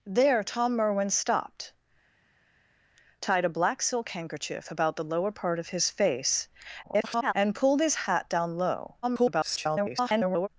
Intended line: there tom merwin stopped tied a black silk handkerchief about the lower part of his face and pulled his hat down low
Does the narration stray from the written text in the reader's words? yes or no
yes